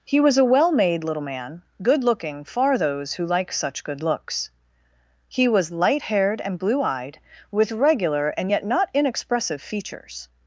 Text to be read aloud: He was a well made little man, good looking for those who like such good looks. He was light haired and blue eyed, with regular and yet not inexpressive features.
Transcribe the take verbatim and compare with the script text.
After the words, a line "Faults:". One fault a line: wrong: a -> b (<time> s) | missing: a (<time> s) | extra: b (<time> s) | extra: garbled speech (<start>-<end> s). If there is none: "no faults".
He was a well made little man, good looking far those who like such good looks. He was light haired and blue eyed, with regular and yet not inexpressive features.
Faults:
wrong: for -> far (2.4 s)